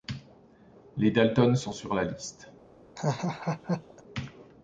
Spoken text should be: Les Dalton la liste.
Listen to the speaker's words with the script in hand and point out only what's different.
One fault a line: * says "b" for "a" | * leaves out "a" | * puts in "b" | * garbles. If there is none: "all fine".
* puts in "sont sur"